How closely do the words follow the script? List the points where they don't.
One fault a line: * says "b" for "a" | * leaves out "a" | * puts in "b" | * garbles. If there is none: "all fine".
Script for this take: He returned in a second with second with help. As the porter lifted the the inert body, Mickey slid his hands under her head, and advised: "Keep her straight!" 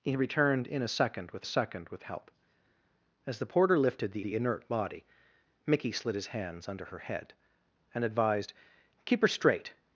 all fine